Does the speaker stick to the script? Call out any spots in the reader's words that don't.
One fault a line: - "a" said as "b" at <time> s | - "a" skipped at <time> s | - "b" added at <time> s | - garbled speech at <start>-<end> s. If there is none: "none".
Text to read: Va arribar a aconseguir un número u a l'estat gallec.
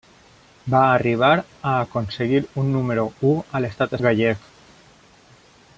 none